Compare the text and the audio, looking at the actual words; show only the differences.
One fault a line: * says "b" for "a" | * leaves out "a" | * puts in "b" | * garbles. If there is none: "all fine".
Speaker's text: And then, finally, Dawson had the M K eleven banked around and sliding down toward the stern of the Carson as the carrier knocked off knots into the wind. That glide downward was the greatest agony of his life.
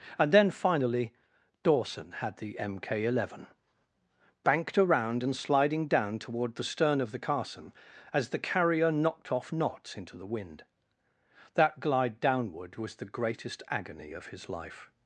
all fine